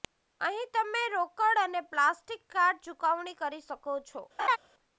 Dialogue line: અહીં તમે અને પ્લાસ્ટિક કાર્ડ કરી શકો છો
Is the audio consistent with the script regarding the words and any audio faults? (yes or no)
no